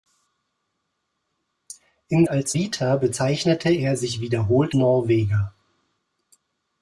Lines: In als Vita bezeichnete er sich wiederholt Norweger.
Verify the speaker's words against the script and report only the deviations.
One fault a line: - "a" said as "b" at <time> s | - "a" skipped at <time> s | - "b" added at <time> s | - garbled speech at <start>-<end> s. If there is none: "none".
none